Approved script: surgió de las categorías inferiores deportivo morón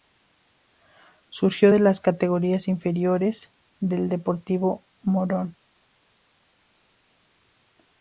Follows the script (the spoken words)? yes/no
no